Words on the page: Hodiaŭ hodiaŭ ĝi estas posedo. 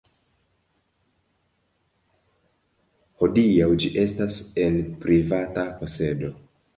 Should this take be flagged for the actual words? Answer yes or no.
yes